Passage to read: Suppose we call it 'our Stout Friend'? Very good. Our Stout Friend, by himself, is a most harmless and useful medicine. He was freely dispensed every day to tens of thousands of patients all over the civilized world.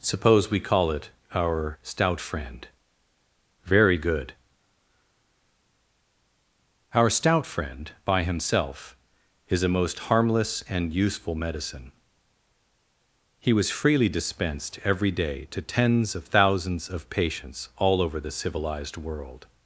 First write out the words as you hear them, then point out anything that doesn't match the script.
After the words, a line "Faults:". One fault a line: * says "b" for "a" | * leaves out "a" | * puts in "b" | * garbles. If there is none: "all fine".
Suppose we call it 'our Stout Friend'? Very good. Our Stout Friend, by himself, is a most harmless and useful medicine. He was freely dispensed every day to tens of thousands of patients all over the civilized world.
Faults:
all fine